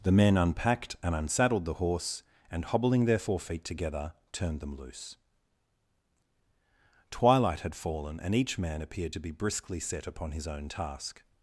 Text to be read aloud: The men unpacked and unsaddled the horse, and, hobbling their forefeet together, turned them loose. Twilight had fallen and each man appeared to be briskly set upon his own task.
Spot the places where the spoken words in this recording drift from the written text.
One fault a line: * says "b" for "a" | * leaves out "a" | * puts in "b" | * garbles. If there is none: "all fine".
all fine